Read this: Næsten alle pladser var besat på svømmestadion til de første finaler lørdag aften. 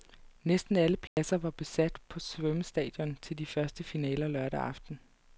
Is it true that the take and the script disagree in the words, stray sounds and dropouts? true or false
true